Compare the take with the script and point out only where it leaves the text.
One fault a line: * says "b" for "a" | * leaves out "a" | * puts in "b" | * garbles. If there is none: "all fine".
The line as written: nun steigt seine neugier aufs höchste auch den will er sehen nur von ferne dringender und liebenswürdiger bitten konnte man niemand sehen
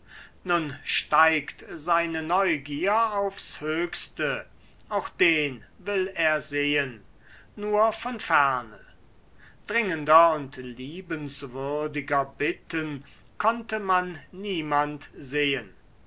all fine